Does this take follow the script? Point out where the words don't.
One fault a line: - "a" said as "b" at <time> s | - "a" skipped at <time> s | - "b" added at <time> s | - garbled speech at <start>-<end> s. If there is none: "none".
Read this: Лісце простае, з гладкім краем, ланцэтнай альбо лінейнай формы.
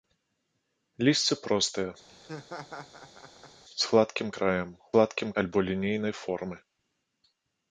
- "ланцэтнай" said as "гладкім" at 4.9 s